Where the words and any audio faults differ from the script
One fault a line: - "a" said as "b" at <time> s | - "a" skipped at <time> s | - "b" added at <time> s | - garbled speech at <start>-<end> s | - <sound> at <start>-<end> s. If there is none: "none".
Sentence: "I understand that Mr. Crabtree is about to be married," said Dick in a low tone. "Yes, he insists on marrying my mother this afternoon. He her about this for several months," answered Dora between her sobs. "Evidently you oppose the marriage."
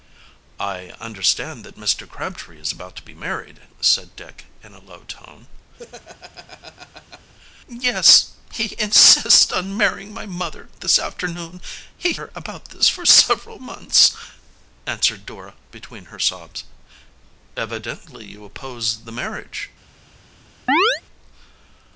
- laugh at 5.8-7.3 s
- chirp at 20.7-21.0 s